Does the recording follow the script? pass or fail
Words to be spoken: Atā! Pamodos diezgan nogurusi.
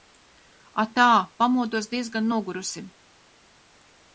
pass